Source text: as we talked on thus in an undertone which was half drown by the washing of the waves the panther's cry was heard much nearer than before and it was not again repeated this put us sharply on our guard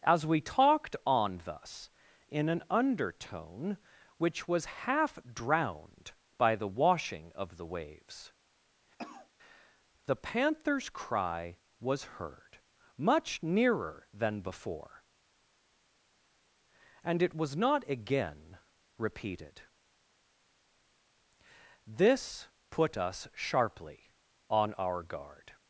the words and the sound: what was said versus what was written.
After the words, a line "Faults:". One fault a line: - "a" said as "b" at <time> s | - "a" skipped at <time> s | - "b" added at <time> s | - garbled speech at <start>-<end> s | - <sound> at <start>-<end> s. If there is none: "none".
as we talked on thus in an undertone which was half drowned by the washing of the waves the panther's cry was heard much nearer than before and it was not again repeated this put us sharply on our guard
Faults:
- "drown" said as "drowned" at 5.3 s
- cough at 9.0-9.3 s